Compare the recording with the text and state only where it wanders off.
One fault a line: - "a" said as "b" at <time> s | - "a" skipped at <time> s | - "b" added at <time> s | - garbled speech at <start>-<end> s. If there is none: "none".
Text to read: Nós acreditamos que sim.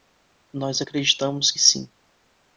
none